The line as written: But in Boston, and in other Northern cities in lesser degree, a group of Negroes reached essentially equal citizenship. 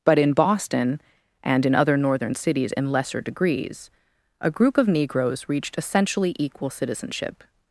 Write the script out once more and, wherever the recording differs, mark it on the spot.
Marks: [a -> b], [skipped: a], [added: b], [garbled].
But in Boston, and in other Northern cities in lesser [degree, -> degrees] a group of Negroes reached essentially equal citizenship.